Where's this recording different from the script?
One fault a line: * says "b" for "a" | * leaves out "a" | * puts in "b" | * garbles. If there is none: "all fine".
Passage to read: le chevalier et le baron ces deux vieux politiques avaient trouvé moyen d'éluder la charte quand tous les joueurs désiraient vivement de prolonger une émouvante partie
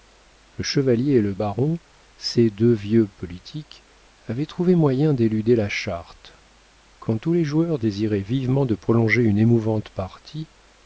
all fine